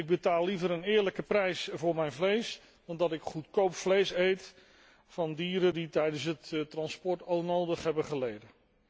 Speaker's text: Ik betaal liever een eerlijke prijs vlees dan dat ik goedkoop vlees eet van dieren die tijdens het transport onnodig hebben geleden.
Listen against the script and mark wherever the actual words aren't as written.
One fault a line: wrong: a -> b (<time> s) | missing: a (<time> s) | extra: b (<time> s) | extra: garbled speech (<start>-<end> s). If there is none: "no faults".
extra: voor mijn (1.7 s)